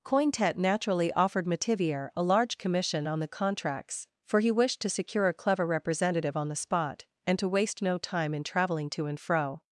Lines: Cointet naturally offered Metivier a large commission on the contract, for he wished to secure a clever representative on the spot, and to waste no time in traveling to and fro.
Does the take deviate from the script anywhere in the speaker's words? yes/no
yes